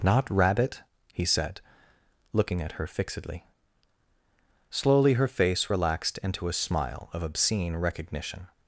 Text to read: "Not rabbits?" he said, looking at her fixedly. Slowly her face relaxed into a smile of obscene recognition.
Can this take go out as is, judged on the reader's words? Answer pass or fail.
fail